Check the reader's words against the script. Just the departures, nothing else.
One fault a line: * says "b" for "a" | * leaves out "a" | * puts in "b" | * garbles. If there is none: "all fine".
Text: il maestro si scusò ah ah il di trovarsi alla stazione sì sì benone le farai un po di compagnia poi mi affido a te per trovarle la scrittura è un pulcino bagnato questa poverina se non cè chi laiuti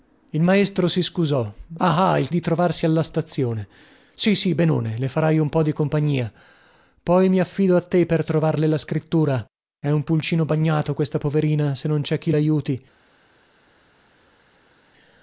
all fine